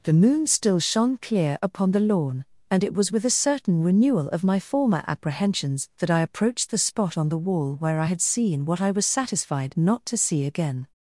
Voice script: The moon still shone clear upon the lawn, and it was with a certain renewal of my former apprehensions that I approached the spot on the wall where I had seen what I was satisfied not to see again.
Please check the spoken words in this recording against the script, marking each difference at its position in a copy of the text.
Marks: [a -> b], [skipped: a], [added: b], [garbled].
The moon still shone clear upon the lawn, and it was with a certain renewal of my former apprehensions that I approached the spot on the wall where I had seen what I was satisfied not to see again.